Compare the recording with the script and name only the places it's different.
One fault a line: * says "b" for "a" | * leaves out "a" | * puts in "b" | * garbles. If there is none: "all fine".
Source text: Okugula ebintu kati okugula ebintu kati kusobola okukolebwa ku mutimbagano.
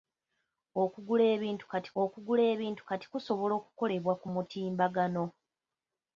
all fine